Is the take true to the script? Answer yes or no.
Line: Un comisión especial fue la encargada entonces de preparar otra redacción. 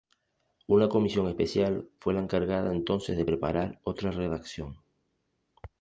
no